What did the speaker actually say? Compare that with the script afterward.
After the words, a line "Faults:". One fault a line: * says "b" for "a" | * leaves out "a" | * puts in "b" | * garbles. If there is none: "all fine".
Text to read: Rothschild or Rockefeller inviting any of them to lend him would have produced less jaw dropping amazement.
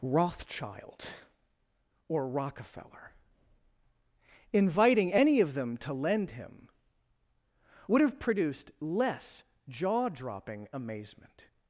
Rothschild or Rockefeller inviting any of them to lend him would have produced less jaw dropping amazement.
Faults:
all fine